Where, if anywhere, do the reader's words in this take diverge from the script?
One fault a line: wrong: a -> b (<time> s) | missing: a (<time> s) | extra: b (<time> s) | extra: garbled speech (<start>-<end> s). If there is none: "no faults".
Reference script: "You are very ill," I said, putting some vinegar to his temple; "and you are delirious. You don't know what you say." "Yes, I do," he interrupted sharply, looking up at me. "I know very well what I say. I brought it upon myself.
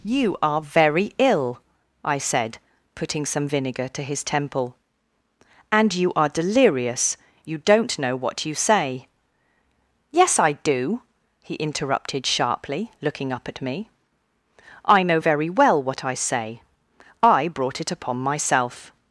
no faults